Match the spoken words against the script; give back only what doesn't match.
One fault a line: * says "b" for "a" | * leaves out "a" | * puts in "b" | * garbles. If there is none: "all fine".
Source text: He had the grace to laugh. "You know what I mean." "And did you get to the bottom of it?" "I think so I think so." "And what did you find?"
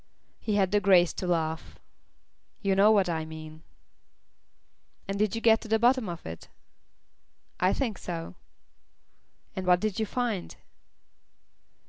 * leaves out "I think so"